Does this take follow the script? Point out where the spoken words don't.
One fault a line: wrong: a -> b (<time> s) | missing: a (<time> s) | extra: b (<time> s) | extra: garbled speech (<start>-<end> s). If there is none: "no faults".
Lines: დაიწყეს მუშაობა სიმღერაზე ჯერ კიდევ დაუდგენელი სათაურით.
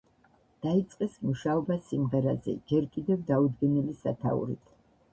no faults